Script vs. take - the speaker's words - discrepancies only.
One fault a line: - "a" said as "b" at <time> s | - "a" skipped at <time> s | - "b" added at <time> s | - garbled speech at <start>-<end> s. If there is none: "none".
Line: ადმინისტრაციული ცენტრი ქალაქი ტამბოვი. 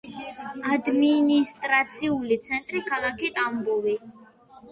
none